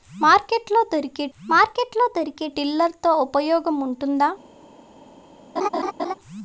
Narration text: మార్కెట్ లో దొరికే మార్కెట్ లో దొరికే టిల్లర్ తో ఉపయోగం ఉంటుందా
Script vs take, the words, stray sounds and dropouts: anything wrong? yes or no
yes